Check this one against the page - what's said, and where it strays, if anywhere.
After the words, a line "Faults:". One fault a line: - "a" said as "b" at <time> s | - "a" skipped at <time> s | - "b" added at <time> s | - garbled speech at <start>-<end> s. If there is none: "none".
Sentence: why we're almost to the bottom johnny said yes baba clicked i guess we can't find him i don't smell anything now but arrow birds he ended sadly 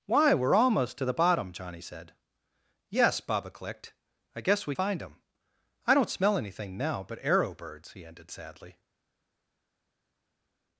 why we're almost to the bottom johnny said yes baba clicked i guess we find him i don't smell anything now but arrow birds he ended sadly
Faults:
- "can't" skipped at 4.7 s